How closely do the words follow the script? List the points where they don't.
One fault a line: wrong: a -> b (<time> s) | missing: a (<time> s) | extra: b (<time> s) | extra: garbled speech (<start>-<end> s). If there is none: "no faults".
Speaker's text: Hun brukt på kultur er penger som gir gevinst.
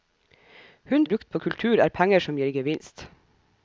no faults